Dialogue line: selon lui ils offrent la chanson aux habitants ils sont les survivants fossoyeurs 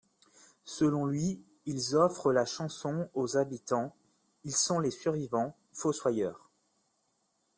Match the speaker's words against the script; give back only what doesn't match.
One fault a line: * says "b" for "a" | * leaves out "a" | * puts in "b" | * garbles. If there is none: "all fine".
all fine